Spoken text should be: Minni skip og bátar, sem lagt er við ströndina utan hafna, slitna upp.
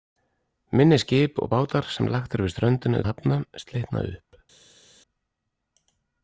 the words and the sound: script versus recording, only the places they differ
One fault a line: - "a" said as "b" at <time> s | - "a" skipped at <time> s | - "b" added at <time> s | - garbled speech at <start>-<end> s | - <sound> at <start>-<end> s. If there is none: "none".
- "utan" skipped at 3.0 s